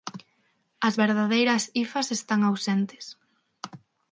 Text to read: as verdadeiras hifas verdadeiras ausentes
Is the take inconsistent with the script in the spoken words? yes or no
yes